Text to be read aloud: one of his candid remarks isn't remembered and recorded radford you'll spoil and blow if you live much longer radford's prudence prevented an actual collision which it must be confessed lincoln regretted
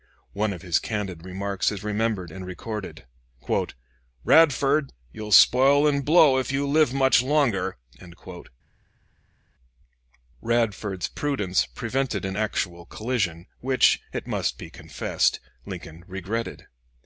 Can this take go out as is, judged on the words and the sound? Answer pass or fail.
fail